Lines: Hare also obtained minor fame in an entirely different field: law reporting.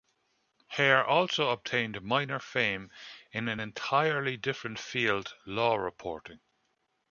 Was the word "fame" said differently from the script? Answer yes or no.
no